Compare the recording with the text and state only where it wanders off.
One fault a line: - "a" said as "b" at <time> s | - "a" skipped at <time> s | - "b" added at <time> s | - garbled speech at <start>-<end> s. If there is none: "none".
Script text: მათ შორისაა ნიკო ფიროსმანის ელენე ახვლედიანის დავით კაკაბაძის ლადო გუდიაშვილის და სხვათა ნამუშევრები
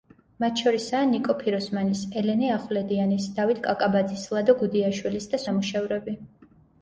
- "სხვათა" skipped at 5.4 s